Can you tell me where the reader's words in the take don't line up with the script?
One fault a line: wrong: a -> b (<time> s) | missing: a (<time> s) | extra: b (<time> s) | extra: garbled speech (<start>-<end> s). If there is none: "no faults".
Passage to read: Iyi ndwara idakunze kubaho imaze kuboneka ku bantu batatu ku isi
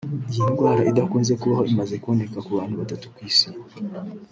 no faults